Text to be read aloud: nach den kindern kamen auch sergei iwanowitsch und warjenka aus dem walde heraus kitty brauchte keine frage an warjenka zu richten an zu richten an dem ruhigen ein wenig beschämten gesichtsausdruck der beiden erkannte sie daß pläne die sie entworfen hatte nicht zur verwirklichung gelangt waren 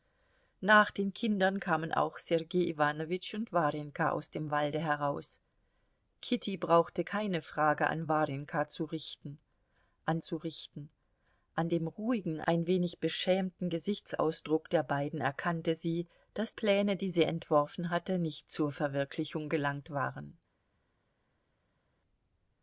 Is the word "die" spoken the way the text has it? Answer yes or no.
yes